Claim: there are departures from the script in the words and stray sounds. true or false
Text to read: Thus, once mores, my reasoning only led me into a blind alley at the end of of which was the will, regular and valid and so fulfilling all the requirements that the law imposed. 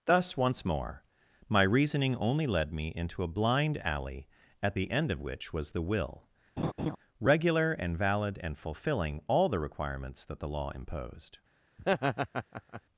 true